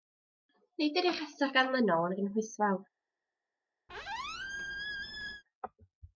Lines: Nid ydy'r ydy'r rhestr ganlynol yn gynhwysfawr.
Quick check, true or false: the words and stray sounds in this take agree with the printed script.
false